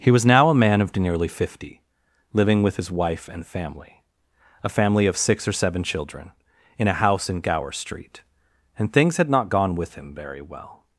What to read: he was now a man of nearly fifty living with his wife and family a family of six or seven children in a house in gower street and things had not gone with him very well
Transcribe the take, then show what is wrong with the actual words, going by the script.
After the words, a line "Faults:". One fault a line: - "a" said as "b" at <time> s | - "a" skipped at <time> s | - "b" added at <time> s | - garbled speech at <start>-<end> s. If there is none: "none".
he was now a man of nearly fifty living with his wife and family a family of six or seven children in a house in gower street and things had not gone with him very well
Faults:
none